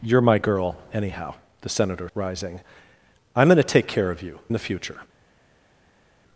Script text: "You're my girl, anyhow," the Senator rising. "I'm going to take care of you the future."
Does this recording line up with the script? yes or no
yes